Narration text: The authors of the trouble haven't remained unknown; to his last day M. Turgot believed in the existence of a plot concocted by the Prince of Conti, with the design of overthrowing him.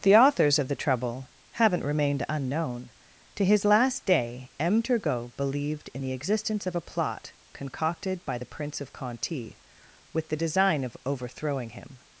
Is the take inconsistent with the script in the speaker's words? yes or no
no